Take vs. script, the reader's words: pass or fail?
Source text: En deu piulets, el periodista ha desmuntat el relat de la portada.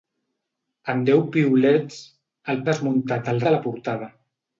fail